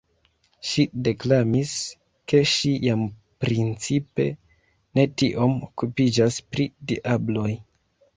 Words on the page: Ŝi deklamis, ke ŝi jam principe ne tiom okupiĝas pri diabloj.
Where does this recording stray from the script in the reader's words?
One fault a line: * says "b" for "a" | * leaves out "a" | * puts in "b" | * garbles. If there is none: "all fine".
all fine